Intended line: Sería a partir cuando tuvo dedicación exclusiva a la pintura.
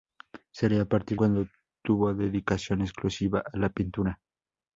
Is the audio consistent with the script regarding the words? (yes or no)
yes